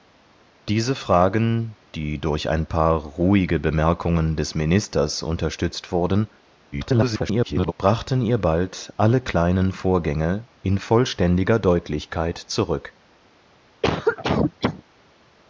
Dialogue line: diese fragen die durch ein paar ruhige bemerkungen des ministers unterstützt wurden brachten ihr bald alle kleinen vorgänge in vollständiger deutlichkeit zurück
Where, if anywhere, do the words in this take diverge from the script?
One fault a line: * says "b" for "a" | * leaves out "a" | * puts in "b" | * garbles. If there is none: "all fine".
* garbles